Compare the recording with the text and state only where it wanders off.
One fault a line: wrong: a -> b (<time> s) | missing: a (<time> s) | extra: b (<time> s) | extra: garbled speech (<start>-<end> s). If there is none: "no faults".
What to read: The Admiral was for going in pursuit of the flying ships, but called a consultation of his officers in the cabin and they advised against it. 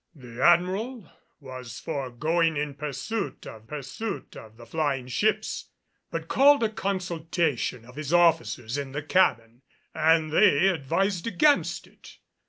extra: pursuit of (3.6 s)